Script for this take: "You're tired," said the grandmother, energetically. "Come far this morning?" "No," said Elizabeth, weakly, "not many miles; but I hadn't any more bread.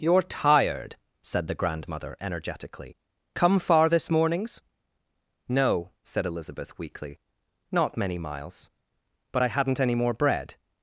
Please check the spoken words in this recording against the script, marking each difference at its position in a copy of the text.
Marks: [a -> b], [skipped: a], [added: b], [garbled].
"You're tired," said the grandmother, energetically. "Come far this [morning?" -> mornings] "No," said Elizabeth, weakly, "not many miles; but I hadn't any more bread.